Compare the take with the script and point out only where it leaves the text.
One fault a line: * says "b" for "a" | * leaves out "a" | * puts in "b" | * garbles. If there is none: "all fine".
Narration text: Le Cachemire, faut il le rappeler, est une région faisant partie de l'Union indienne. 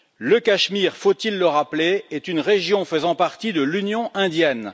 all fine